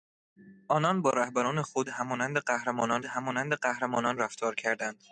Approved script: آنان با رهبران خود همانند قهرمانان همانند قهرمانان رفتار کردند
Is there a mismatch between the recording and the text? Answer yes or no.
no